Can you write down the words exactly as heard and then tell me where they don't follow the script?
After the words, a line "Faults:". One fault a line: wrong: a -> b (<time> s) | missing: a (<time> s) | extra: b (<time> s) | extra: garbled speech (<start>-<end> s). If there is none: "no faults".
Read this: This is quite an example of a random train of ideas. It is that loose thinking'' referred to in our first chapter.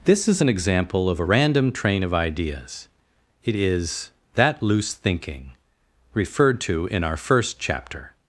This is an example of a random train of ideas. It is that loose thinking'' referred to in our first chapter.
Faults:
missing: quite (0.4 s)